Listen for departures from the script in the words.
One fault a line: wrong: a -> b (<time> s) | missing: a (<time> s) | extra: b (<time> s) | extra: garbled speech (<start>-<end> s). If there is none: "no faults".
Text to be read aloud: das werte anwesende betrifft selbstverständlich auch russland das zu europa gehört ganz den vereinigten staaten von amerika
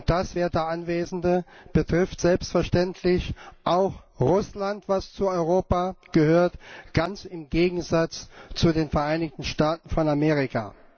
extra: im gegensatz zu (7.2 s)